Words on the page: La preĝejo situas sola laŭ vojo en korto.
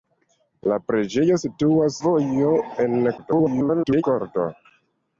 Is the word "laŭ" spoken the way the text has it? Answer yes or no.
no